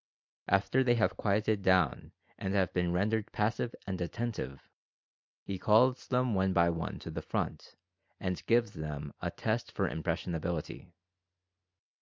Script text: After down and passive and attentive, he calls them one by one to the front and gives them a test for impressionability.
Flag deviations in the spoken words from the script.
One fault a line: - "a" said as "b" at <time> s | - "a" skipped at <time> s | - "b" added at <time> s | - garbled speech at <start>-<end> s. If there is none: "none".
- "they have quieted" added at 0.8 s
- "have been rendered" added at 2.5 s